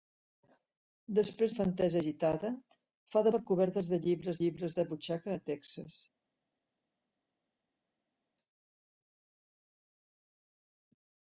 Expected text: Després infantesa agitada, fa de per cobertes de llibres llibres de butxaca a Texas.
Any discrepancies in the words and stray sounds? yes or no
no